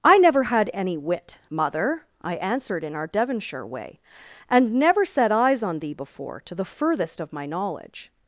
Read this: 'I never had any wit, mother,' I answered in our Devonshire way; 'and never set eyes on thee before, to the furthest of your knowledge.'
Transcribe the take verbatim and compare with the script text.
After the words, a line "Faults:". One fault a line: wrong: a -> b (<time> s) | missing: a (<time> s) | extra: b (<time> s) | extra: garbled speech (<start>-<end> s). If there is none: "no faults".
'I never had any wit, mother,' I answered in our Devonshire way; 'and never set eyes on thee before, to the furthest of my knowledge.'
Faults:
wrong: your -> my (7.3 s)